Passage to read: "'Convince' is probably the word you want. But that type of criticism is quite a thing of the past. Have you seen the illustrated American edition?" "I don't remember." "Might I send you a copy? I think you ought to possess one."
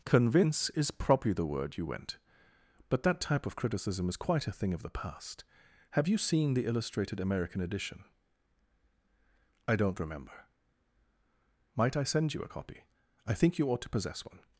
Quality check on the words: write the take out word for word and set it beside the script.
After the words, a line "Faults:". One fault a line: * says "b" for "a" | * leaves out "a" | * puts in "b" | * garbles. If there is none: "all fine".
"'Convince' is probably the word you went. But that type of criticism is quite a thing of the past. Have you seen the illustrated American edition?" "I don't remember." "Might I send you a copy? I think you ought to possess one."
Faults:
* says "went" for "want"